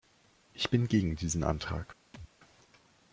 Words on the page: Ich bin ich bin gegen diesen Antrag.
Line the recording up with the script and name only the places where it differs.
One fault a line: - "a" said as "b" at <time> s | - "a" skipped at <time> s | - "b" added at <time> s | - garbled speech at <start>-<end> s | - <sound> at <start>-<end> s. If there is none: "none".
- "ich bin" skipped at 0.9 s
- thud at 2.1-2.3 s